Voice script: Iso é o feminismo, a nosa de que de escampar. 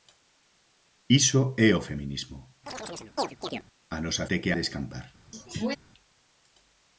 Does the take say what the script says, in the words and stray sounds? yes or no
no